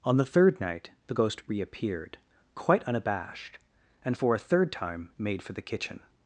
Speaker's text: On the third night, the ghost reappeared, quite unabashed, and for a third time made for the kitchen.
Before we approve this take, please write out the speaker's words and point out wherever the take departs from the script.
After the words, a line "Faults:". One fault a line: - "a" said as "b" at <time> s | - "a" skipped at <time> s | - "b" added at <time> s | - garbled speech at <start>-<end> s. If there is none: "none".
On the third night, the ghost reappeared, quite unabashed, and for a third time made for the kitchen.
Faults:
none